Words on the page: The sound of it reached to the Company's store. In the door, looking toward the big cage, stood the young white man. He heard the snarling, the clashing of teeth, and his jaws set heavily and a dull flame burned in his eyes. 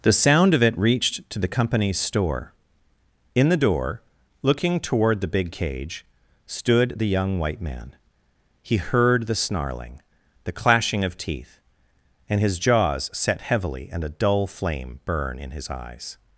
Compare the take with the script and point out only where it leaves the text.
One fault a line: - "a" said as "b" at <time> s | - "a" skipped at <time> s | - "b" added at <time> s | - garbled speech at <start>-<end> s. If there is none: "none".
- "burned" said as "burn" at 15.0 s